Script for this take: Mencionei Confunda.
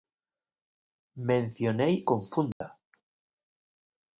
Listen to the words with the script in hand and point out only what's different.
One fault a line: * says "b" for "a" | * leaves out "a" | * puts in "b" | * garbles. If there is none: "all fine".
all fine